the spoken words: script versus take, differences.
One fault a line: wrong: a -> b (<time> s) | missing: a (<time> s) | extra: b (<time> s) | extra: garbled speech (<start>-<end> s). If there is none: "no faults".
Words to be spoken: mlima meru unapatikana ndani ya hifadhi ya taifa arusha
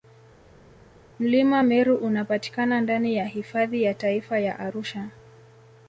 extra: ya (4.4 s)